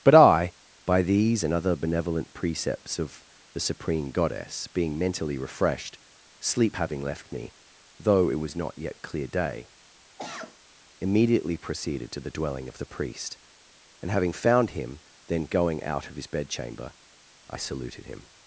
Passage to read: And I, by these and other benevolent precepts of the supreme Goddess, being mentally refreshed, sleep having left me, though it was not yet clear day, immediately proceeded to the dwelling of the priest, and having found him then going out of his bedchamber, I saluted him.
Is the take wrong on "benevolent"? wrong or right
right